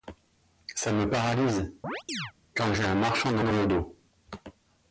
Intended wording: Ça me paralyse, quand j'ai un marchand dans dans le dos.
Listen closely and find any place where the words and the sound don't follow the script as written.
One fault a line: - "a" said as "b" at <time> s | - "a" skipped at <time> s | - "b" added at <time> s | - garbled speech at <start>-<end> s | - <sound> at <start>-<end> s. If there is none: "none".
- chirp at 1.8-2.3 s